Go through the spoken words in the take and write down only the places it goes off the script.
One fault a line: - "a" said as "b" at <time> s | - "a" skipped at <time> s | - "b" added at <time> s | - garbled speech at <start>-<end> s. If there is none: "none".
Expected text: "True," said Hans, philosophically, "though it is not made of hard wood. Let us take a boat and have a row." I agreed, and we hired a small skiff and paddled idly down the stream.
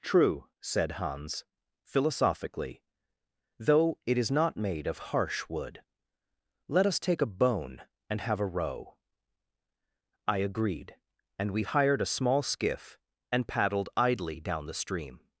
- "hard" said as "harsh" at 5.0 s
- "boat" said as "bone" at 7.2 s